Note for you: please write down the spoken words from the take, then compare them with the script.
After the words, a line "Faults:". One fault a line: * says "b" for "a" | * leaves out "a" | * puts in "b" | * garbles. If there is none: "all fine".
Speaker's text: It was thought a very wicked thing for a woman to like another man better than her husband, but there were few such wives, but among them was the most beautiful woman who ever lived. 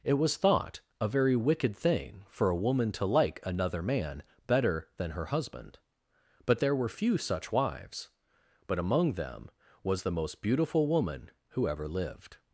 It was thought a very wicked thing for a woman to like another man better than her husband, but there were few such wives, but among them was the most beautiful woman who ever lived.
Faults:
all fine